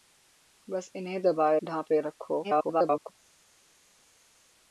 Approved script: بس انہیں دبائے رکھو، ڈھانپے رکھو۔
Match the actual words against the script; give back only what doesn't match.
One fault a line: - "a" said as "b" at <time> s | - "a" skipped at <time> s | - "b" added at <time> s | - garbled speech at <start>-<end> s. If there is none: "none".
- "رکھو" skipped at 1.6 s
- garbled speech at 2.4-3.1 s